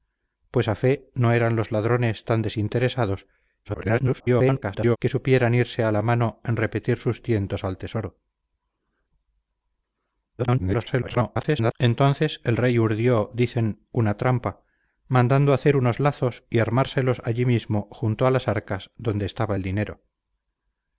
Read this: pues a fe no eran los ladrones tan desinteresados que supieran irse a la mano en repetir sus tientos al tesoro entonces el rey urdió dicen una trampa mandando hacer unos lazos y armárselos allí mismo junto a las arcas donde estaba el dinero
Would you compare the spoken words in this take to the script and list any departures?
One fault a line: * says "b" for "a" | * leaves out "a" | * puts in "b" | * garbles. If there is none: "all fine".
* garbles
* garbles